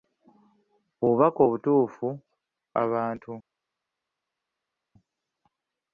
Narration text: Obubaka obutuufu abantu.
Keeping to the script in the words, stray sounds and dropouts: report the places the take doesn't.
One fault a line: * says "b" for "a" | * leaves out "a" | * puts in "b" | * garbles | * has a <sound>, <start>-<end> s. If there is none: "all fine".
all fine